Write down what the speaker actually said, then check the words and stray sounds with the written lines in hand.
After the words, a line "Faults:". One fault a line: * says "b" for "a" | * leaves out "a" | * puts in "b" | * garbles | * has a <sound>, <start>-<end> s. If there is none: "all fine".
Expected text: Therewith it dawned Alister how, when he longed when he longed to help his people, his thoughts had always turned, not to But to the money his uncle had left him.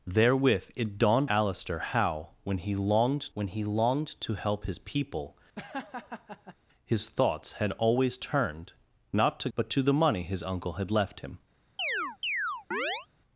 Therewith it dawned Alister how, when he longed when he longed to help his people, his thoughts had always turned, not to But to the money his uncle had left him.
Faults:
* has a laugh, 5.6-6.6 s
* has a chirp, 11.8-13.1 s